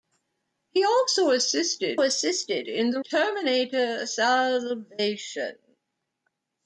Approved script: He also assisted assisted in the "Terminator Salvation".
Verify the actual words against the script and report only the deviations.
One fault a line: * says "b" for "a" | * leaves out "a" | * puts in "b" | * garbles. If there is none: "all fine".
all fine